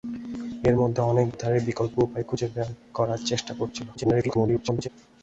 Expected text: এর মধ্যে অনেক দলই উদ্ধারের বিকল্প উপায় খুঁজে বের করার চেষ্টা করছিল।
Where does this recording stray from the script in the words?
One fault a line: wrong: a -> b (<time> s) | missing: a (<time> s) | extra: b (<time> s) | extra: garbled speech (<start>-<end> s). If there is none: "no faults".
missing: দলই (1.3 s)
extra: garbled speech (4.0-4.9 s)